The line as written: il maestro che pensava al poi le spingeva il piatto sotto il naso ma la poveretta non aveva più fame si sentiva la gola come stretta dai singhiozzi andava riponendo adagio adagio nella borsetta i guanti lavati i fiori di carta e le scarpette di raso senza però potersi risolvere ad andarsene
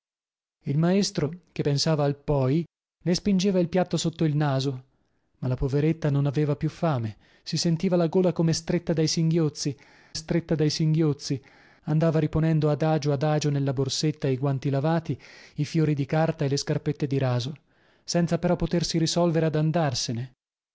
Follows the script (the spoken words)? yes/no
no